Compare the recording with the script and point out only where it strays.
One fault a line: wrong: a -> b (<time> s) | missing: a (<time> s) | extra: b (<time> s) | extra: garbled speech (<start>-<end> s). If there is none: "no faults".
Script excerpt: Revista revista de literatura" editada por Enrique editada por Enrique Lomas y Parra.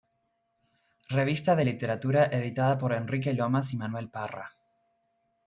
missing: revista (1.6 s)
missing: editada por Enrique (3.3 s)
extra: Manuel (3.8 s)